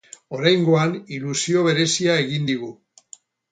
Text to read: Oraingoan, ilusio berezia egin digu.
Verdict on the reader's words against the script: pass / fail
pass